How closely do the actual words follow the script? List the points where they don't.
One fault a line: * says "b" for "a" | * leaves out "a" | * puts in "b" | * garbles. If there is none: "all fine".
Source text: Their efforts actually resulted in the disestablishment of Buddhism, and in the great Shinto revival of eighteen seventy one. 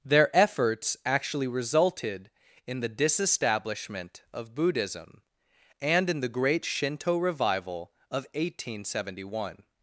all fine